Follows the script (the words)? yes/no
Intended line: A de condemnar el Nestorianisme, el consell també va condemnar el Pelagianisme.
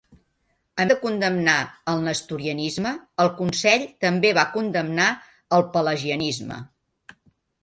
yes